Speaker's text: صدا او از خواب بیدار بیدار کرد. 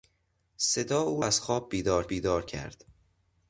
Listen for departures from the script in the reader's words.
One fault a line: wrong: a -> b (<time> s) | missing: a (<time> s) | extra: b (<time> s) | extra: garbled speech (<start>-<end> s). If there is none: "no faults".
no faults